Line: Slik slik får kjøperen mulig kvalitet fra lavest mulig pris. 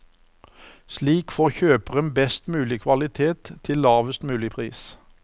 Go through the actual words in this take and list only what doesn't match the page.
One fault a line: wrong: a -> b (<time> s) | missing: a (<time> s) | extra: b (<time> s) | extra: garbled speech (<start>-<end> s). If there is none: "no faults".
missing: slik (1.3 s)
extra: best (2.1 s)
wrong: fra -> til (3.6 s)